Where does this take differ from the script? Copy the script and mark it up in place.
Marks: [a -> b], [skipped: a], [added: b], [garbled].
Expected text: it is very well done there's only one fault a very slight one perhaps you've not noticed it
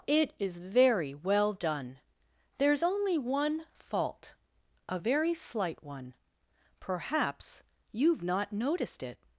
it is very well done there's only one fault a very slight one perhaps you've not noticed it